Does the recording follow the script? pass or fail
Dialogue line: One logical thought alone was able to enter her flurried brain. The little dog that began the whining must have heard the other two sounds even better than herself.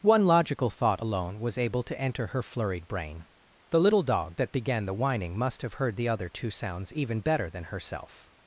pass